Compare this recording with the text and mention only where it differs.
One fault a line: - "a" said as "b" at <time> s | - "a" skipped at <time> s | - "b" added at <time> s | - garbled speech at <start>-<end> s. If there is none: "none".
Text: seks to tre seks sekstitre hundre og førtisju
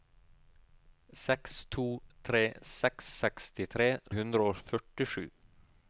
none